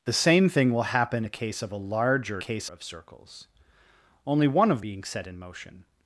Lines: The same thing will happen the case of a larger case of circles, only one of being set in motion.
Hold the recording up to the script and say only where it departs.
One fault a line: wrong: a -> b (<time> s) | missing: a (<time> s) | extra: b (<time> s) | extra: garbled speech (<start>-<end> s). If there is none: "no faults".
no faults